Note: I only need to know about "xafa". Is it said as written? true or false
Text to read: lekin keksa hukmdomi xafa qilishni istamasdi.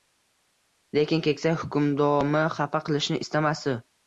true